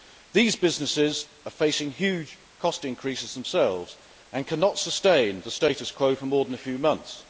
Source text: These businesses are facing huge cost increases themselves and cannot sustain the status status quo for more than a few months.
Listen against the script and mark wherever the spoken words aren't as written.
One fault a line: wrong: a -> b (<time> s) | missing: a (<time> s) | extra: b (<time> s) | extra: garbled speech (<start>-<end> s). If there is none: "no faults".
missing: status (5.9 s)